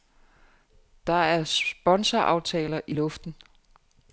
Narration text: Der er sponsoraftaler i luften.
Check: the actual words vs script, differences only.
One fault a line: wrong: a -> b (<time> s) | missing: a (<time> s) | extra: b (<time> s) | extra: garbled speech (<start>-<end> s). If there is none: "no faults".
no faults